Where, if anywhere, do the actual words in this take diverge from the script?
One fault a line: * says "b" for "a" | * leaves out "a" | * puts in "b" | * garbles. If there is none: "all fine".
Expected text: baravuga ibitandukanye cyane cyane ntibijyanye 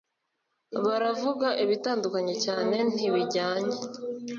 * leaves out "cyane"